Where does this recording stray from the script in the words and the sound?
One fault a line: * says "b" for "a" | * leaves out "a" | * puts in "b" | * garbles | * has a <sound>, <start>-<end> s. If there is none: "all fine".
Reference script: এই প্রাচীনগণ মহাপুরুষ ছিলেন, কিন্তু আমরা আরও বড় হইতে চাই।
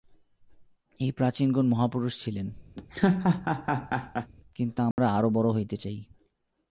* has a laugh, 2.7-4.3 s
* has a dropout, 4.9-5.0 s